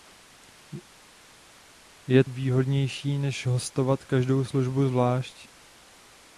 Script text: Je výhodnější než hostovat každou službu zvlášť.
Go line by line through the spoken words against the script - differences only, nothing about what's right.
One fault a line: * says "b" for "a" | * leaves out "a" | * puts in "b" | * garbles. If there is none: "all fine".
all fine